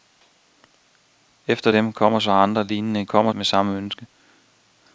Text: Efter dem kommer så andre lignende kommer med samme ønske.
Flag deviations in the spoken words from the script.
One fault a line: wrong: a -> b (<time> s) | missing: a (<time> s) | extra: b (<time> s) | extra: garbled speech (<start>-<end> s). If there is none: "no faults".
no faults